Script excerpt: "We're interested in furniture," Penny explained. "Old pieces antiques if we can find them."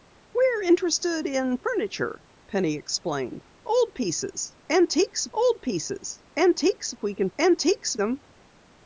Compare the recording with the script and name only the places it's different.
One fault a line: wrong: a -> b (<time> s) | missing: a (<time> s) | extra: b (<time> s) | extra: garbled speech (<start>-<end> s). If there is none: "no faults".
extra: old pieces antiques (5.3 s)
wrong: find -> antiques (7.4 s)